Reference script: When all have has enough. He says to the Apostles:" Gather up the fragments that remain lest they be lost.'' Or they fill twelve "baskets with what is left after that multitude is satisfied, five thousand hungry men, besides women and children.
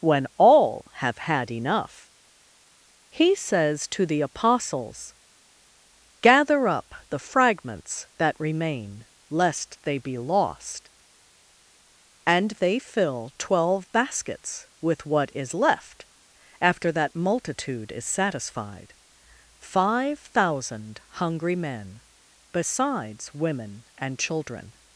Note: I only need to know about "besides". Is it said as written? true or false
true